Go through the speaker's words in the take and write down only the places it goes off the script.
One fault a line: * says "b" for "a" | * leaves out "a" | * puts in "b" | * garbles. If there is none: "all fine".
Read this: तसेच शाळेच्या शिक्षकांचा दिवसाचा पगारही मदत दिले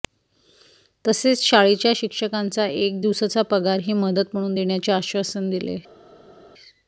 * puts in "एक"
* puts in "म्हणून देण्याचे आश्वासन"